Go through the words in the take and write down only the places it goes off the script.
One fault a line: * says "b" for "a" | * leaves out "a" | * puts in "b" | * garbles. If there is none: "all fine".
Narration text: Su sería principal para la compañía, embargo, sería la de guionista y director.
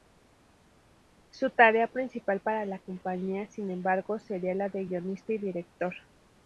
* says "tarea" for "sería"
* puts in "sin"